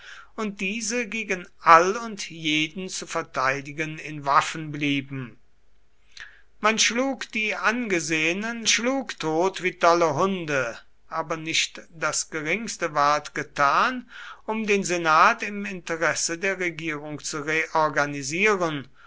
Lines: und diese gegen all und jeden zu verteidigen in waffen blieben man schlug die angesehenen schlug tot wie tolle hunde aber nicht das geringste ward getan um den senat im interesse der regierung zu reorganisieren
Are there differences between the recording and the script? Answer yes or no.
no